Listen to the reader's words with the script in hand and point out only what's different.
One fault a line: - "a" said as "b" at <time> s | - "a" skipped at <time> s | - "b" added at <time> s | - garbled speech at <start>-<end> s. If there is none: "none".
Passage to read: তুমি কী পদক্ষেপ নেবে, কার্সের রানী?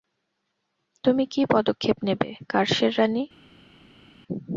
none